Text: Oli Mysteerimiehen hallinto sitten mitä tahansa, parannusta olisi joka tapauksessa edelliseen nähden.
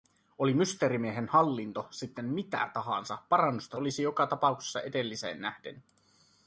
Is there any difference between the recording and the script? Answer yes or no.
no